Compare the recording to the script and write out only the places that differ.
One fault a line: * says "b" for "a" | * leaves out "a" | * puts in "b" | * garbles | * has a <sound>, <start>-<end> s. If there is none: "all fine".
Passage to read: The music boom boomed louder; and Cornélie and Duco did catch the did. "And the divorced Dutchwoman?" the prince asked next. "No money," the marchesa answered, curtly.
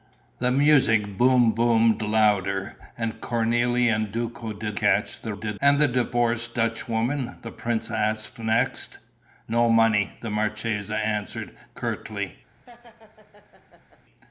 * has a laugh, 12.6-14.0 s